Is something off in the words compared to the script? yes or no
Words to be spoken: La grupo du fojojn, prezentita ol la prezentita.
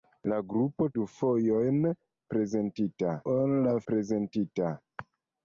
no